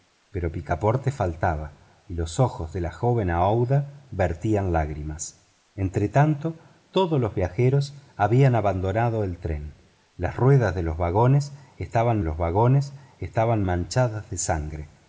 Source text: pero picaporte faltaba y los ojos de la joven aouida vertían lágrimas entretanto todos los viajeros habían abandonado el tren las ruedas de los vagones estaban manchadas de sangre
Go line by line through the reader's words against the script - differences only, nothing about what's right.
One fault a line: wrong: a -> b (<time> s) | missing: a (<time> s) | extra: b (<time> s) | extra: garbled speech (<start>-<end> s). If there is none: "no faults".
extra: los vagones estaban (12.2 s)